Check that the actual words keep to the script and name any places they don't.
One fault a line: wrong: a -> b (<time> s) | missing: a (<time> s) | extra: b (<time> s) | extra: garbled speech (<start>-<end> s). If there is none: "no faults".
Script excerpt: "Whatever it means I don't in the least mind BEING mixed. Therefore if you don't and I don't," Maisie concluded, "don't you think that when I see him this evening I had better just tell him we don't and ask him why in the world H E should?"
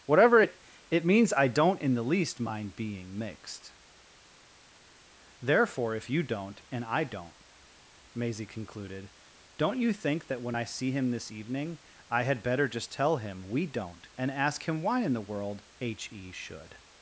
extra: it (0.9 s)